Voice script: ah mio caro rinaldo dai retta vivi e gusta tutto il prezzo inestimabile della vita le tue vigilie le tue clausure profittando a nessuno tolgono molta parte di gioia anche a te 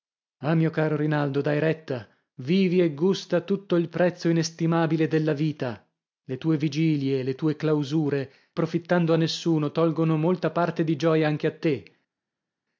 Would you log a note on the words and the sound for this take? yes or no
no